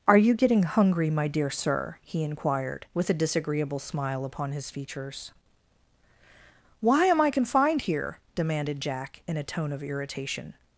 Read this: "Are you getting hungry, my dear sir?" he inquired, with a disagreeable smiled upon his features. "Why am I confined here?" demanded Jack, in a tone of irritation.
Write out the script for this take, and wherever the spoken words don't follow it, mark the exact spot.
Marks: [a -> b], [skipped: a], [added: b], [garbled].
"Are you getting hungry, my dear sir?" he inquired, with a disagreeable [smiled -> smile] upon his features. "Why am I confined here?" demanded Jack, in a tone of irritation.